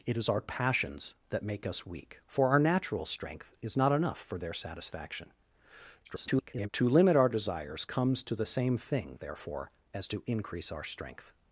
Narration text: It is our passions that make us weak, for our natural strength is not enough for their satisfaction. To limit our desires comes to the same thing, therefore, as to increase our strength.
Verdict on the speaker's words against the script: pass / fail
fail